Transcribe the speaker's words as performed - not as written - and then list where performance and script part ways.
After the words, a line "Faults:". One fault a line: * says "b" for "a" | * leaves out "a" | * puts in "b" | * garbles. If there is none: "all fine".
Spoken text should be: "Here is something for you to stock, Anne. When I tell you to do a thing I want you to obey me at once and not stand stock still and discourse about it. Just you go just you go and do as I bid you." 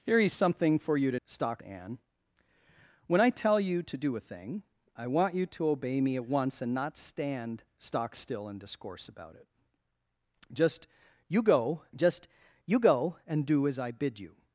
"Here is something for you to stock, Anne. When I tell you to do a thing I want you to obey me at once and not stand stock still and discourse about it. Just you go just you go and do as I bid you."
Faults:
all fine